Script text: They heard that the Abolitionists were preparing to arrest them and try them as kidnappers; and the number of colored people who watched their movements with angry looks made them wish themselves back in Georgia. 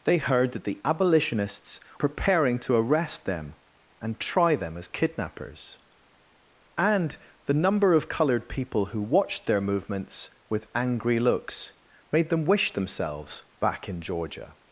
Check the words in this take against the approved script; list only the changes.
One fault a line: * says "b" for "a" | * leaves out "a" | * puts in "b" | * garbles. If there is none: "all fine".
* leaves out "were"